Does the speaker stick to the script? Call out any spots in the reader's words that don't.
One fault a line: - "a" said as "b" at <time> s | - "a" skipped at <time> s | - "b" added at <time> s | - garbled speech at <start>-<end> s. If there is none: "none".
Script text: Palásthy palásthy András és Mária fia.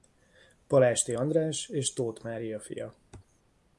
- "palásthy" skipped at 1.1 s
- "Tóth" added at 1.9 s